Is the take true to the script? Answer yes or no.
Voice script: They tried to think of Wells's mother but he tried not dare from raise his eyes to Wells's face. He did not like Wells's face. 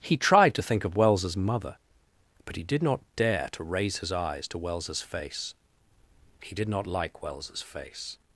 no